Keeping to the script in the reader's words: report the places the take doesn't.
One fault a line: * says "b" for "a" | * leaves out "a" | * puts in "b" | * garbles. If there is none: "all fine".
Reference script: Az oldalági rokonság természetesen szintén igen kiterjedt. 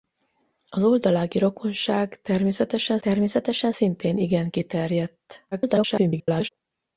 * puts in "természetesen"
* garbles